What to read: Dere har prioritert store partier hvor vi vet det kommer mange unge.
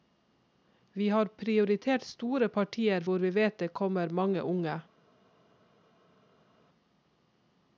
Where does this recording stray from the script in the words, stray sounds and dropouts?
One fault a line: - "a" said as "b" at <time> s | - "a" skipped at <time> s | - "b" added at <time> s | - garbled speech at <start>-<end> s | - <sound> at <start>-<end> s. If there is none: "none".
- "Dere" said as "Vi" at 0.9 s